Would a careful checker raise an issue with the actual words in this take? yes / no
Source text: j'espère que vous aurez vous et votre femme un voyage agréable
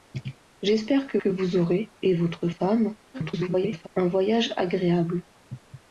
yes